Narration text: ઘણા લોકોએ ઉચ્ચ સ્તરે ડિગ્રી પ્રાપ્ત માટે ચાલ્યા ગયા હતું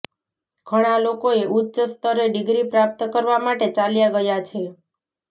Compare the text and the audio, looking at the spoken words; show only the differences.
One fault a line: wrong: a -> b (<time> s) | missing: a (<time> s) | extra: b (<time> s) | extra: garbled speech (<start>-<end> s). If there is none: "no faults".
extra: કરવા (3.1 s)
wrong: હતું -> છે (4.4 s)